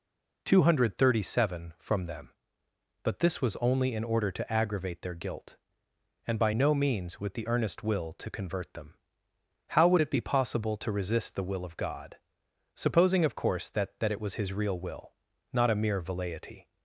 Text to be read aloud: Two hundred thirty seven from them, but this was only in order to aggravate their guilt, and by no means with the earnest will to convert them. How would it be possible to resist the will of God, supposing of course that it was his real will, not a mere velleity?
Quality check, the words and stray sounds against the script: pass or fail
fail